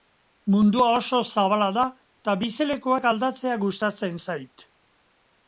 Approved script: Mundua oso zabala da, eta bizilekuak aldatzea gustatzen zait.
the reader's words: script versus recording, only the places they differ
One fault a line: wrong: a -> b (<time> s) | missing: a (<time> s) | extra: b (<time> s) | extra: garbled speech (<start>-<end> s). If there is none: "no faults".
no faults